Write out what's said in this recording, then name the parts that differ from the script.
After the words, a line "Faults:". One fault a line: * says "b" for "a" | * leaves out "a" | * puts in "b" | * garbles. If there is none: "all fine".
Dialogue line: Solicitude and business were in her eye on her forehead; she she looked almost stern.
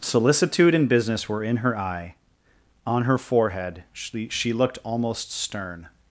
Solicitude and business were in her eye on her forehead; she she looked almost stern.
Faults:
all fine